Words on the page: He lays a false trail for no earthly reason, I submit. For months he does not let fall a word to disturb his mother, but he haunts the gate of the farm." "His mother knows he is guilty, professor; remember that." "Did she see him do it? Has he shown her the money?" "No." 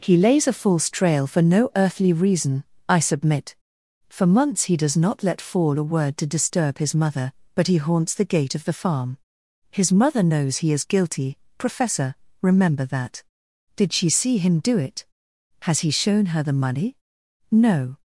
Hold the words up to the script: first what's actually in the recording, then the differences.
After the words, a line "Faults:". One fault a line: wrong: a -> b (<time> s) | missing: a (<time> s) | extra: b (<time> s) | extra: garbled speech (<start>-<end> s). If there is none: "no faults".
He lays a false trail for no earthly reason, I submit. For months he does not let fall a word to disturb his mother, but he haunts the gate of the farm." "His mother knows he is guilty, professor; remember that." "Did she see him do it? Has he shown her the money?" "No."
Faults:
no faults